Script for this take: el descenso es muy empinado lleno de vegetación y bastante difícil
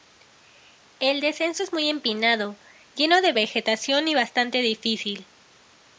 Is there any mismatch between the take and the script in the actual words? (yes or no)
no